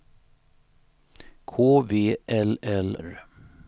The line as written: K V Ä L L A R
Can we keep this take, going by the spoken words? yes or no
no